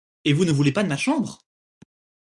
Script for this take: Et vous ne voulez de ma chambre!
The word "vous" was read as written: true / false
true